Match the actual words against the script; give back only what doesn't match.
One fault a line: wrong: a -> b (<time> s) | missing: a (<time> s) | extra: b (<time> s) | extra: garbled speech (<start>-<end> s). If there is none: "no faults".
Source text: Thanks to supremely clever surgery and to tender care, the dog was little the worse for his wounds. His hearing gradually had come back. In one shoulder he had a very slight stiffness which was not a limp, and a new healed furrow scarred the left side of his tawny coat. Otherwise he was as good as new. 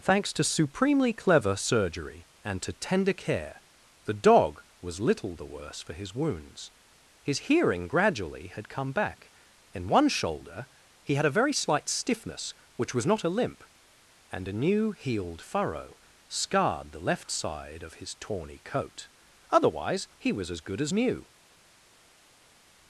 no faults